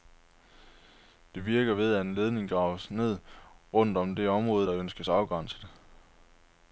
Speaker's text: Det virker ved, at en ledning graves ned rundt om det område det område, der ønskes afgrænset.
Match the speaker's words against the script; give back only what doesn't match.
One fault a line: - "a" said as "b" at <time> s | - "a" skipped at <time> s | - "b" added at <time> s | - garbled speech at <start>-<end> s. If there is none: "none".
- "det område" skipped at 4.7 s